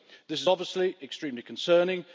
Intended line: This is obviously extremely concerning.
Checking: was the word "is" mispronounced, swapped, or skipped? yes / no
no